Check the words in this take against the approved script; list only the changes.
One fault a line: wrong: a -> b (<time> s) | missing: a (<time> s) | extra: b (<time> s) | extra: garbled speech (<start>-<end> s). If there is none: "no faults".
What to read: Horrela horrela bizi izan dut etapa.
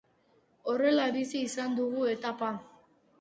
missing: horrela (1.0 s)
wrong: dut -> dugu (1.8 s)